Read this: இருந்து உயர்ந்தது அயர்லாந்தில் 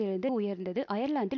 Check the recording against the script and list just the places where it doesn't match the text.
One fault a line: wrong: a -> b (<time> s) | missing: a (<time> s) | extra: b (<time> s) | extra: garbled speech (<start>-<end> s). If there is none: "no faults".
no faults